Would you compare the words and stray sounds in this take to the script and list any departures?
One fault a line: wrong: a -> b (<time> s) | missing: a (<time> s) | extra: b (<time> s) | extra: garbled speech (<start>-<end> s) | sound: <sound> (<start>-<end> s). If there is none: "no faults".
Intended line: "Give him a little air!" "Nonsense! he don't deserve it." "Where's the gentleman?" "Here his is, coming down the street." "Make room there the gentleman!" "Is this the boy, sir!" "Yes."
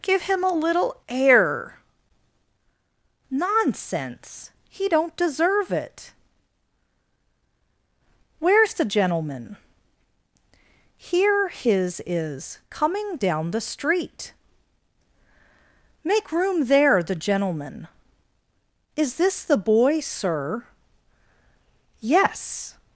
no faults